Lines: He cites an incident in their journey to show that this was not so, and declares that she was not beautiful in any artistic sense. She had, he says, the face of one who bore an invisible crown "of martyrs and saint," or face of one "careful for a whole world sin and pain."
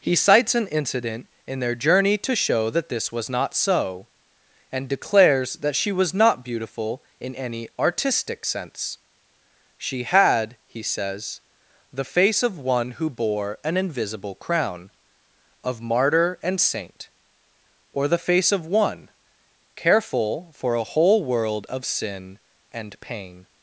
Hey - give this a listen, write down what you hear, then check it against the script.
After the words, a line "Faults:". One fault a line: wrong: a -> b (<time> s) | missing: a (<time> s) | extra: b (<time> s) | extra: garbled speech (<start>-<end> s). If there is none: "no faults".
He cites an incident in their journey to show that this was not so, and declares that she was not beautiful in any artistic sense. She had, he says, the face of one who bore an invisible crown "of martyr and saint," or the face of one "careful for a whole world of sin and pain."
Faults:
wrong: martyrs -> martyr (15.8 s)
extra: the (18.1 s)
extra: of (21.7 s)